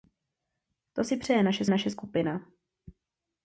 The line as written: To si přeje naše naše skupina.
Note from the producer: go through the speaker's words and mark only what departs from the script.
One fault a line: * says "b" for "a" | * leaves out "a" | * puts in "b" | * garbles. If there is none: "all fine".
all fine